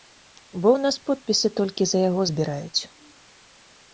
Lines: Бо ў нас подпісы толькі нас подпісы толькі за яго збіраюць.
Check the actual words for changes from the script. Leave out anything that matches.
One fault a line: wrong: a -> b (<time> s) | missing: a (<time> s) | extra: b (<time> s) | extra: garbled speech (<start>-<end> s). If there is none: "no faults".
missing: нас подпісы толькі (1.8 s)